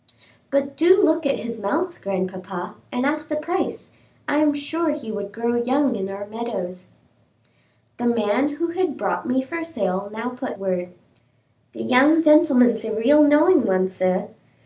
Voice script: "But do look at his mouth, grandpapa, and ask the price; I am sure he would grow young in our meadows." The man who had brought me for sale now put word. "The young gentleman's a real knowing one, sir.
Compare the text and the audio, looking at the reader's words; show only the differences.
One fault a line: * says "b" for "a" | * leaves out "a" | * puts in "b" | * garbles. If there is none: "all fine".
all fine